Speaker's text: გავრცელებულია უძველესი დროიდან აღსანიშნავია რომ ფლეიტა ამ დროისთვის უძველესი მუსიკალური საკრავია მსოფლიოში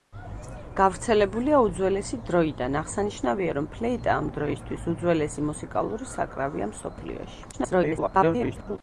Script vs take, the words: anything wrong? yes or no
yes